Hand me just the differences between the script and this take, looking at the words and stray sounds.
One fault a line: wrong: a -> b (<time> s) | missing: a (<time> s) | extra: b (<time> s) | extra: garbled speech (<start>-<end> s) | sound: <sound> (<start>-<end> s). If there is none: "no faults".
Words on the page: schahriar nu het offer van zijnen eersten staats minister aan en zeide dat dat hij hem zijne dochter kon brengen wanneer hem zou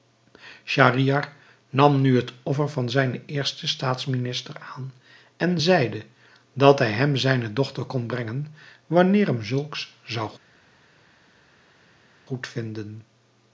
extra: nam (1.7 s)
missing: dat (6.8 s)
extra: zulks (9.4 s)